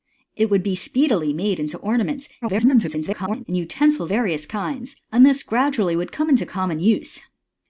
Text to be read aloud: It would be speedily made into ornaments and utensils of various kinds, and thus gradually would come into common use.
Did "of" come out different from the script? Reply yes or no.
yes